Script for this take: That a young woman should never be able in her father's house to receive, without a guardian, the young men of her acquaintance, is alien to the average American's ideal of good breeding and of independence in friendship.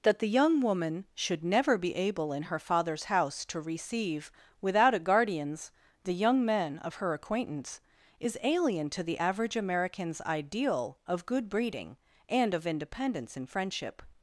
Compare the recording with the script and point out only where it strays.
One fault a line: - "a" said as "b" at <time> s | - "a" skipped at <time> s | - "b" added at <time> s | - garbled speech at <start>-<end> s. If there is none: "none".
- "a" said as "the" at 0.2 s
- "guardian" said as "guardians" at 5.0 s